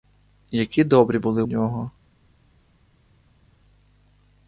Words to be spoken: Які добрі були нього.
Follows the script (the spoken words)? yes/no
yes